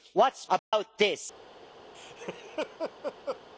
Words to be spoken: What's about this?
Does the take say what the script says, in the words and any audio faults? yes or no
no